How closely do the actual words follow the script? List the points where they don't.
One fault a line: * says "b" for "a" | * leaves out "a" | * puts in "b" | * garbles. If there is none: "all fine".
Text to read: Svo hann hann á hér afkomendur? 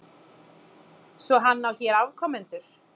* leaves out "hann"